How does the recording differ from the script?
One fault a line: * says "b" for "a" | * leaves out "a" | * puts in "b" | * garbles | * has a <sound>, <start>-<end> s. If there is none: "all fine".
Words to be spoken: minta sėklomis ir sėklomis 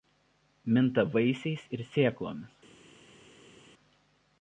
* says "vaisiais" for "sėklomis"